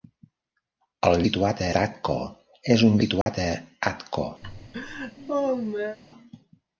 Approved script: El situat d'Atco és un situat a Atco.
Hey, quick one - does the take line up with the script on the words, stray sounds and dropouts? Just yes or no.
no